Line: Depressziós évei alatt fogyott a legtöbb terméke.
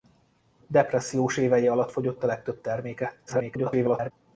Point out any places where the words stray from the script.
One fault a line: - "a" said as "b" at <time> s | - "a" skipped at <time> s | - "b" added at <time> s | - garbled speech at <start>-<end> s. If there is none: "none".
- garbled speech at 3.3-4.1 s